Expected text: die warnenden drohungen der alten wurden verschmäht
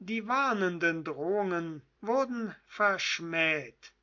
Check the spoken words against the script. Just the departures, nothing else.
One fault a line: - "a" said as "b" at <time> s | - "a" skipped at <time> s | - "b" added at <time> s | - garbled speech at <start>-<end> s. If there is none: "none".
- "der alten" skipped at 1.8 s